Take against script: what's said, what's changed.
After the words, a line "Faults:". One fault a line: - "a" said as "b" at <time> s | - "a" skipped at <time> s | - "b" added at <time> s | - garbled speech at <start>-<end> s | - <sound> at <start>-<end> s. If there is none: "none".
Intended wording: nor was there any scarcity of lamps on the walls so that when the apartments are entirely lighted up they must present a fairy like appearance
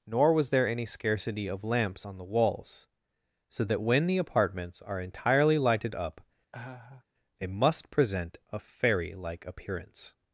nor was there any scarcity of lamps on the walls so that when the apartments are entirely lighted up they must present a fairy like appearance
Faults:
- laugh at 6.5-7.0 s